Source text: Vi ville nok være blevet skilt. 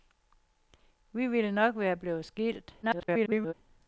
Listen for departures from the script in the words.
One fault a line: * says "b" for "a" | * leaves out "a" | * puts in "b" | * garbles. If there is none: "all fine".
* garbles